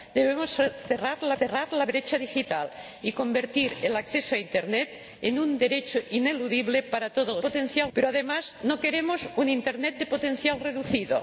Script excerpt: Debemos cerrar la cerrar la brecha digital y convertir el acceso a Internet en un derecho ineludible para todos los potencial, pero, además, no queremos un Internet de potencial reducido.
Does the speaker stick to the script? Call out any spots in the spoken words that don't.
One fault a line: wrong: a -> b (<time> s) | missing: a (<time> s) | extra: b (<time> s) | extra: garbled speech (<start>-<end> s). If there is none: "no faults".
no faults